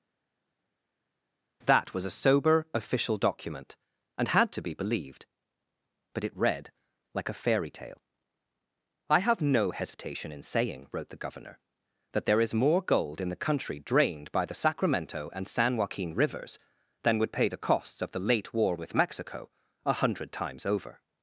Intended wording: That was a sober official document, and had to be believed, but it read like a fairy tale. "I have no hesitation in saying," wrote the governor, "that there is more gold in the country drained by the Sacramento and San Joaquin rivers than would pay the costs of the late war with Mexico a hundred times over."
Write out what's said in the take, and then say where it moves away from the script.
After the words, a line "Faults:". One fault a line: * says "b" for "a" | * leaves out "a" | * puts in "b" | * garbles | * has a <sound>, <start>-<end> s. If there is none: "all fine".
That was a sober official document, and had to be believed, but it read like a fairy tale. "I have no hesitation in saying," wrote the governor, "that there is more gold in the country drained by the Sacramento and San Joaquin rivers than would pay the costs of the late war with Mexico a hundred times over."
Faults:
all fine